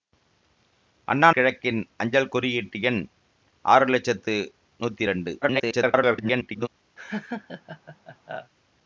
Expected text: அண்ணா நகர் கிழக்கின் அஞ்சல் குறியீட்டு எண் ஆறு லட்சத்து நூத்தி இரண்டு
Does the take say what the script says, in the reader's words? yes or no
no